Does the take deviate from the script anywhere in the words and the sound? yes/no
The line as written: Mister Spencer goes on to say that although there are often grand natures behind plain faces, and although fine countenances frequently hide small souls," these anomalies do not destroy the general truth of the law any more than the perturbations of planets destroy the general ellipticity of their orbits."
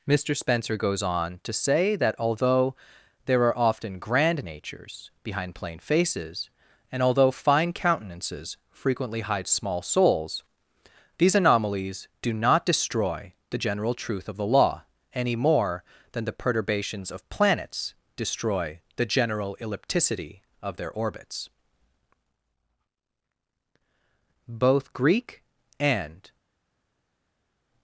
yes